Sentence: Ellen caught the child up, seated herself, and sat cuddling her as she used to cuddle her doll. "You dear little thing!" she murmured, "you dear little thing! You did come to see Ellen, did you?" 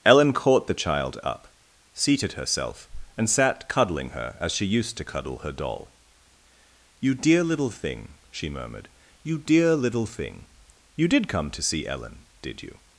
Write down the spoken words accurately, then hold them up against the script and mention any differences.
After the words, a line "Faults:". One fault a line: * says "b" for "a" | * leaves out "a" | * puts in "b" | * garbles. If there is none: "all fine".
Ellen caught the child up, seated herself, and sat cuddling her as she used to cuddle her doll. "You dear little thing!" she murmured, "you dear little thing! You did come to see Ellen, did you?"
Faults:
all fine